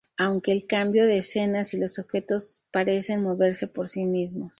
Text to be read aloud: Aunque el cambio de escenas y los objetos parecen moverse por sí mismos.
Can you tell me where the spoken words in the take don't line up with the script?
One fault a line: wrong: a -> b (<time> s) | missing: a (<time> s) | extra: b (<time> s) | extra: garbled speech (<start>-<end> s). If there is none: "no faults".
no faults